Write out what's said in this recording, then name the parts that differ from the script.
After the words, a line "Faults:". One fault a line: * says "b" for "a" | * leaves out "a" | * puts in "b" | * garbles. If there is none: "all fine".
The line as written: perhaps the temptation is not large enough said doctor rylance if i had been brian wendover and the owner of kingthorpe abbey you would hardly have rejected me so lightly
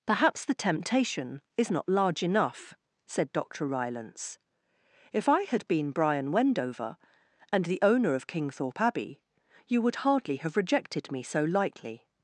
perhaps the temptation is not large enough said doctor rylance if i had been brian wendover and the owner of kingthorpe abbey you would hardly have rejected me so lightly
Faults:
all fine